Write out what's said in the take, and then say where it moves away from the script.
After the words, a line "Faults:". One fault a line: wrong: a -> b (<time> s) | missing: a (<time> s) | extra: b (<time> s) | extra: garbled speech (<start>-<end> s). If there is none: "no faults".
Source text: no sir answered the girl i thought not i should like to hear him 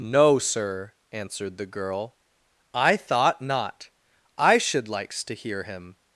no sir answered the girl i thought not i should likes to hear him
Faults:
wrong: like -> likes (4.9 s)